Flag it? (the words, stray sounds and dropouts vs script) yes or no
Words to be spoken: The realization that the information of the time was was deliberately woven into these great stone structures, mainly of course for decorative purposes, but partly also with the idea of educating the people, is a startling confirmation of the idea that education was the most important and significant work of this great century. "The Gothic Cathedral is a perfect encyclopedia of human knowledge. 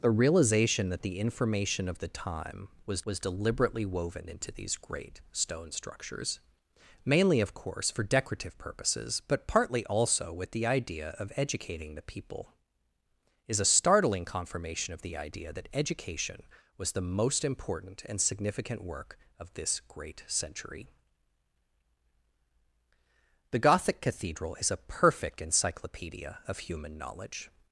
no